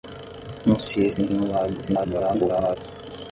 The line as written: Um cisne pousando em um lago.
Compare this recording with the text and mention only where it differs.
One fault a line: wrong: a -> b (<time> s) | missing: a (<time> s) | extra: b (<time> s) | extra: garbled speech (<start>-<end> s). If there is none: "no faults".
missing: pousando (1.3 s)
extra: garbled speech (1.8-2.8 s)